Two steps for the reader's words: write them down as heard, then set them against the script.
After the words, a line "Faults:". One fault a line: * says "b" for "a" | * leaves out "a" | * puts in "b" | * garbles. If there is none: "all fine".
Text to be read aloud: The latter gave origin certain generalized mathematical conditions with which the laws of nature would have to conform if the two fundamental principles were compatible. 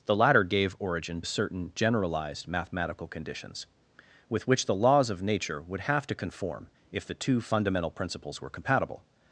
The latter gave origin certain generalized mathematical conditions with which the laws of nature would have to conform if the two fundamental principles were compatible.
Faults:
all fine